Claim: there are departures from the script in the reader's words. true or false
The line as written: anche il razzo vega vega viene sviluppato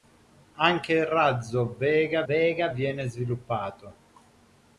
false